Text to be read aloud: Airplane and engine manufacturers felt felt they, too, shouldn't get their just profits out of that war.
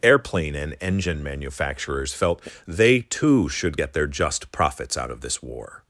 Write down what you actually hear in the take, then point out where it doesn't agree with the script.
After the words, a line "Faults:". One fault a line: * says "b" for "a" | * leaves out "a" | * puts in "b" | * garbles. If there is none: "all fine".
Airplane and engine manufacturers felt they, too, should get their just profits out of this war.
Faults:
* leaves out "felt"
* says "should" for "shouldn't"
* says "this" for "that"